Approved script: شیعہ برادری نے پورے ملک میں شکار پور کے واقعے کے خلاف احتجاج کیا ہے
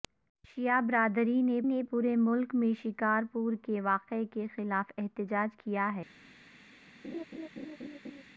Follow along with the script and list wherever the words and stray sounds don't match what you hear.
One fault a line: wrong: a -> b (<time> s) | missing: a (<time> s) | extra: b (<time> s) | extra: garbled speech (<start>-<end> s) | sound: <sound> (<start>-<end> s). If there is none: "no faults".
extra: نے (1.6 s)
sound: laugh (7.0-8.2 s)